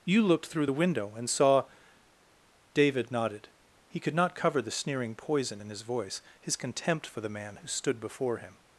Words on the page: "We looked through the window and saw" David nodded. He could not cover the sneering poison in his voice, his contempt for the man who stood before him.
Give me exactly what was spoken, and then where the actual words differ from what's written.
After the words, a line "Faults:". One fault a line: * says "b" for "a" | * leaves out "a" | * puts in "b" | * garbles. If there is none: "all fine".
"You looked through the window and saw" David nodded. He could not cover the sneering poison in his voice, his contempt for the man who stood before him.
Faults:
* says "You" for "We"